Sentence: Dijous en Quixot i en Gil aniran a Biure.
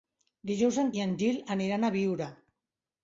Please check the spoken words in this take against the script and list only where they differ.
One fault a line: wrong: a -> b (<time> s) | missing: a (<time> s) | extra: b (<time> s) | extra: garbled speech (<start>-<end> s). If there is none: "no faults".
missing: Quixot (0.9 s)